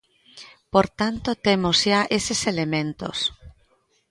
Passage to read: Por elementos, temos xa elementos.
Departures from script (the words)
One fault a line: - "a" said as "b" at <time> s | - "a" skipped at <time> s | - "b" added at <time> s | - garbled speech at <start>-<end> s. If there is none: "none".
- "elementos" said as "tanto" at 1.0 s
- "eses" added at 2.2 s